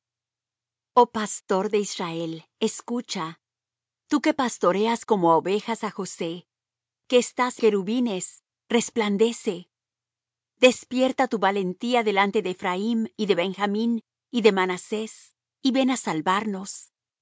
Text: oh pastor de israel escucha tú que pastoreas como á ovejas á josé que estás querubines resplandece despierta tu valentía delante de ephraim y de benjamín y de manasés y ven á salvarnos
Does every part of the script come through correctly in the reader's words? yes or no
yes